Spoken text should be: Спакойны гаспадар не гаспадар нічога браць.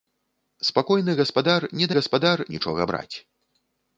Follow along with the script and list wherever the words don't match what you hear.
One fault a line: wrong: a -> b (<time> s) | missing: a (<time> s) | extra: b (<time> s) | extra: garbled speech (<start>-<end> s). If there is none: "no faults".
no faults